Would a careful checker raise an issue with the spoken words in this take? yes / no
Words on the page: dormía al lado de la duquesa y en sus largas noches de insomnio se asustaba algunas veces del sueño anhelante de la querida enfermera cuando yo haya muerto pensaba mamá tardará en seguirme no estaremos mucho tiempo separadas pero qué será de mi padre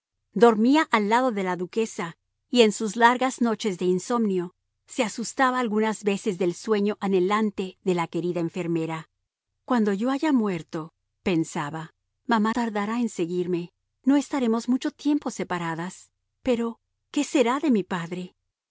no